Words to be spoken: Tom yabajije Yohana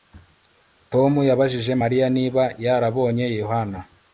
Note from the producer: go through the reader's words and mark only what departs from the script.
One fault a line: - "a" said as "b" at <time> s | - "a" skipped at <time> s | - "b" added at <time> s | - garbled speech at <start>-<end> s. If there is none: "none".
- "Mariya niba yarabonye" added at 1.8 s